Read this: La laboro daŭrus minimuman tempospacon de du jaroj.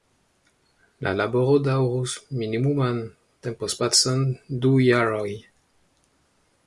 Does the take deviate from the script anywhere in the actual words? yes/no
yes